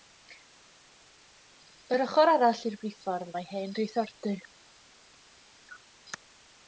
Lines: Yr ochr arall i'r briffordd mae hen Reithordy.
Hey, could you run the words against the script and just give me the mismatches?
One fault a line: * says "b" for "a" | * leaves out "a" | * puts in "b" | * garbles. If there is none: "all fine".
all fine